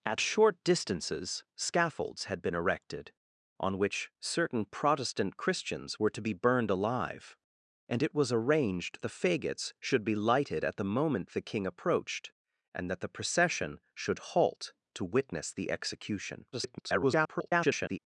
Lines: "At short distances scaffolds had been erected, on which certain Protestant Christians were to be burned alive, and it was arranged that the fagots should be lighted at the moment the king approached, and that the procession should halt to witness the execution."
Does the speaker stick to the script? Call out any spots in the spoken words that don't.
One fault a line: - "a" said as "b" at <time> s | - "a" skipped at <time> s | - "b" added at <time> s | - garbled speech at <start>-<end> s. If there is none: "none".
- "that" skipped at 9.0 s
- garbled speech at 16.5-18.0 s